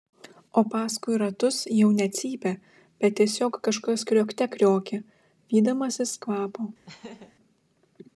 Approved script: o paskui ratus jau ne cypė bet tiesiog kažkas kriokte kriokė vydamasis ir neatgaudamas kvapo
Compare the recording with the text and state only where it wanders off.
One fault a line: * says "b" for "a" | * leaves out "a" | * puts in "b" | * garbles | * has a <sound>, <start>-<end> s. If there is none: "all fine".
* leaves out "ir neatgaudamas"
* has a laugh, 6.9-7.3 s